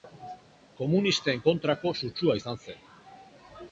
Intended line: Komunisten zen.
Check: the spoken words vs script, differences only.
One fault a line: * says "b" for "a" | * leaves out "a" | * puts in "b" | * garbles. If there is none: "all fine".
* puts in "kontrako sutsua izan"